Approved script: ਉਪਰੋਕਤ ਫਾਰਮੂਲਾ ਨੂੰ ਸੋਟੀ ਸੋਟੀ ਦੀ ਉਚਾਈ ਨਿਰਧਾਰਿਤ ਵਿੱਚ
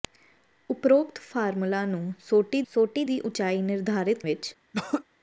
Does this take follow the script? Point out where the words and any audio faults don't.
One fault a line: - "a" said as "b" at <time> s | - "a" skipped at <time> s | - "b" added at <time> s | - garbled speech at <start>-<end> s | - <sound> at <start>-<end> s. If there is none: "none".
- throat clearing at 4.7-5.0 s